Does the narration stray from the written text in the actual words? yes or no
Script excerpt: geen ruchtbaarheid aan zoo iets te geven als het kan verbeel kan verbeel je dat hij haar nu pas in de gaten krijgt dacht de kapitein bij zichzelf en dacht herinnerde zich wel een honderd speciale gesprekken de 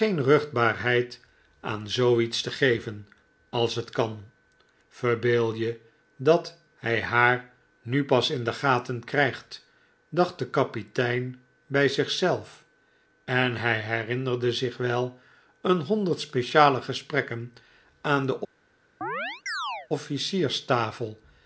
yes